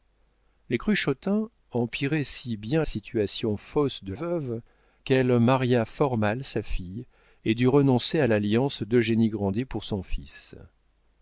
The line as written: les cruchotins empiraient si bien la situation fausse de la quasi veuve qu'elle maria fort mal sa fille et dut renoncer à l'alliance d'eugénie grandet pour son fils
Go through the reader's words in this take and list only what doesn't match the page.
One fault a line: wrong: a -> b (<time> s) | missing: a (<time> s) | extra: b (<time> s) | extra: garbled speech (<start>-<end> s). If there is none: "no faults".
missing: la (2.8 s)
missing: la quasi (4.1 s)